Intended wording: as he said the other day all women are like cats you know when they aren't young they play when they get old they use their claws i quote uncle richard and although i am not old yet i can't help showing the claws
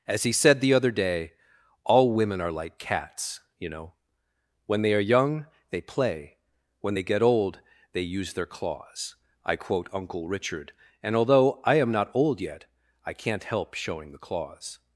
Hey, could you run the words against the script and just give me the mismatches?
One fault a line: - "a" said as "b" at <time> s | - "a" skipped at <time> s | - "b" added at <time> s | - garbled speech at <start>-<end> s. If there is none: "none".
- "aren't" said as "are" at 4.9 s